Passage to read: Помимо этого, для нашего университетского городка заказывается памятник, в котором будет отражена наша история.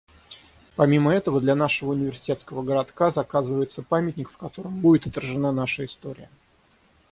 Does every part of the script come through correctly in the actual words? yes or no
yes